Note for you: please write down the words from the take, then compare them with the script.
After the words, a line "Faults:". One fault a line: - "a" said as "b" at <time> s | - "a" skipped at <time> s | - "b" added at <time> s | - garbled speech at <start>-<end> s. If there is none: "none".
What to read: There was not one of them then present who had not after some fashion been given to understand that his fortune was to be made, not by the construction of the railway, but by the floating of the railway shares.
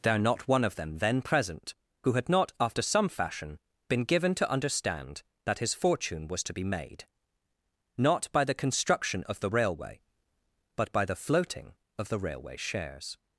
There not one of them then present who had not after some fashion been given to understand that his fortune was to be made, not by the construction of the railway, but by the floating of the railway shares.
Faults:
- "was" skipped at 0.2 s